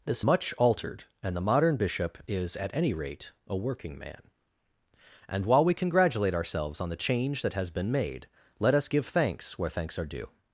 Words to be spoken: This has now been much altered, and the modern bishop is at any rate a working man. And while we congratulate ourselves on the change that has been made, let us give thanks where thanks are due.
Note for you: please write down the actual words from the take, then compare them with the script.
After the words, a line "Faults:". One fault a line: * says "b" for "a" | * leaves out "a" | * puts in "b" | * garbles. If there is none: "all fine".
This much altered, and the modern bishop is at any rate a working man. And while we congratulate ourselves on the change that has been made, let us give thanks where thanks are due.
Faults:
* leaves out "has now been"